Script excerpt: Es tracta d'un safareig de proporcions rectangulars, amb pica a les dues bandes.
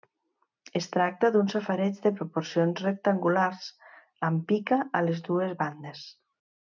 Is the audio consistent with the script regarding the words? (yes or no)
yes